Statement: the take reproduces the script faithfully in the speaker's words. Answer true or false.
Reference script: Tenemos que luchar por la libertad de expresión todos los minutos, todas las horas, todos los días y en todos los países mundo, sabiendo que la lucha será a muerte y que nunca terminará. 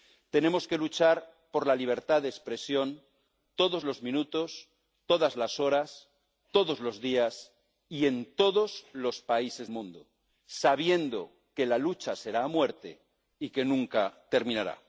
true